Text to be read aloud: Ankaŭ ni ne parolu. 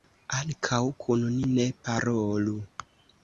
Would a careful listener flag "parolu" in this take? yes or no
no